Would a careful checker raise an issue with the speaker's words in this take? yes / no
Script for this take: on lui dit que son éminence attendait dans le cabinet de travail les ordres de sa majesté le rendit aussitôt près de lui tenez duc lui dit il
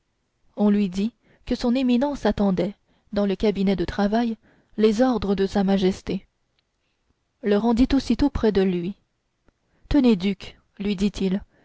no